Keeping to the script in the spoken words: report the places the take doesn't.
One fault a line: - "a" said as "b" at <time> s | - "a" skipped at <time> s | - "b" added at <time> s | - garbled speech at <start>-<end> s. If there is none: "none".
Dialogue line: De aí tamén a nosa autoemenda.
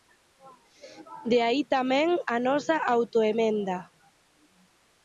none